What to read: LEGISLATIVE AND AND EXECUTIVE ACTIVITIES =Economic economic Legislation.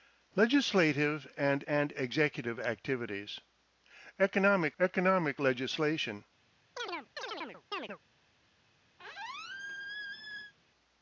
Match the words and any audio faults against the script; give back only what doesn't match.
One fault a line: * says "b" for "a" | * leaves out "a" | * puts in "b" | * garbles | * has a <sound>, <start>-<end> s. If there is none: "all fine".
* has a chirp, 6.8-8.0 s
* has a squeak, 9.0-10.5 s